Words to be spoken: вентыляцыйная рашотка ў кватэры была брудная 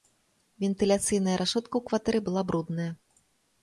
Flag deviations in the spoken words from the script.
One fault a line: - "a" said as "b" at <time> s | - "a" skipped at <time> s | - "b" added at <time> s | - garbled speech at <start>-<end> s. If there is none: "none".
none